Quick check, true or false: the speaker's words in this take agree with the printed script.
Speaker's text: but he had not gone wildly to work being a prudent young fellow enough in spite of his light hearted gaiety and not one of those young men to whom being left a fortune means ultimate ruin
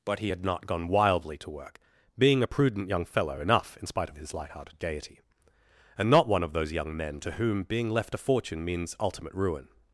true